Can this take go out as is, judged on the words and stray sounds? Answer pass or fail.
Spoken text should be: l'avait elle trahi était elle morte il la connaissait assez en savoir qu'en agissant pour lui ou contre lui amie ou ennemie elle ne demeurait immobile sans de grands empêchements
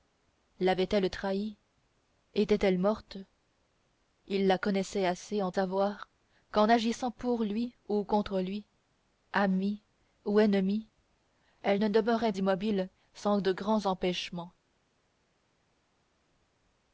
pass